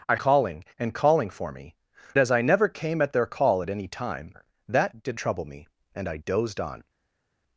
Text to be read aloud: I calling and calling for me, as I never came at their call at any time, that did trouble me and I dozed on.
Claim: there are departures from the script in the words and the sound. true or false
false